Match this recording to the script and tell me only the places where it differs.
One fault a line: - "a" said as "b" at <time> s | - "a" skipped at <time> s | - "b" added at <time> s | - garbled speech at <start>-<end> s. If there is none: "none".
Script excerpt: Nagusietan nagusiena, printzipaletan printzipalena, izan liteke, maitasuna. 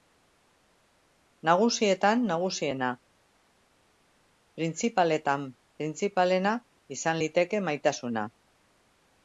none